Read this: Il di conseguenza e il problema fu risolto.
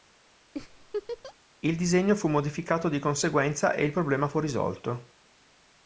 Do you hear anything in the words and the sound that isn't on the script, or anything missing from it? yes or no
yes